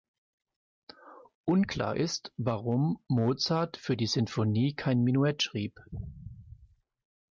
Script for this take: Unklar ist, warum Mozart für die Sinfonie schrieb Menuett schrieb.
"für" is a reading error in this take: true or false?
false